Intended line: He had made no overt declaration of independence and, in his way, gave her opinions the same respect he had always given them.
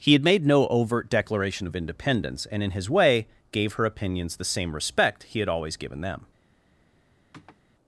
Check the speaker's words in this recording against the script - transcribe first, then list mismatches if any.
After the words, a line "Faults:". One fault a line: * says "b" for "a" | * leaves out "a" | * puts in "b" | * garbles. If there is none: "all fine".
He had made no overt declaration of independence and, in his way, gave her opinions the same respect he had always given them.
Faults:
all fine